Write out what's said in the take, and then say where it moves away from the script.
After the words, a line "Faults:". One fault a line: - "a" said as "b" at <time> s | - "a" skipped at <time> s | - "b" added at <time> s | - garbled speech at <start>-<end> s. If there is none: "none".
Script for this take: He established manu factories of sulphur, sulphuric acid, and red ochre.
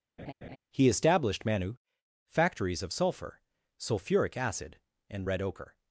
He established manu factories of sulphur, sulphuric acid, and red ochre.
Faults:
none